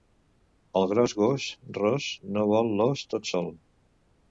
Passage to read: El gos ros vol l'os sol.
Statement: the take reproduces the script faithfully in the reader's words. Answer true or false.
false